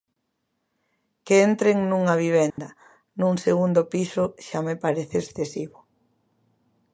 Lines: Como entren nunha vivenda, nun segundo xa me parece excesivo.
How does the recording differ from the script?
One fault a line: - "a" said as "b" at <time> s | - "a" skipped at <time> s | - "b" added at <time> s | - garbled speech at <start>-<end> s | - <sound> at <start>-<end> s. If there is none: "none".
- "Como" said as "Que" at 1.2 s
- dropout at 2.5-2.6 s
- "piso" added at 3.9 s